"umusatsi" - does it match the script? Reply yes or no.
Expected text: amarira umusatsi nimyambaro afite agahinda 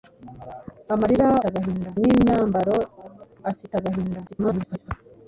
no